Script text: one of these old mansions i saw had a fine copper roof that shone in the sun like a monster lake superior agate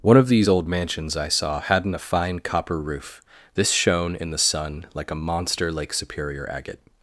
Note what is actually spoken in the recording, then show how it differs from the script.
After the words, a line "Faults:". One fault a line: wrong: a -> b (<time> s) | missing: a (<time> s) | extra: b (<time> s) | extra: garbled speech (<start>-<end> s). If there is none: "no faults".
one of these old mansions i saw hadn't a fine copper roof this shone in the sun like a monster lake superior agate
Faults:
wrong: had -> hadn't (1.6 s)
wrong: that -> this (3.5 s)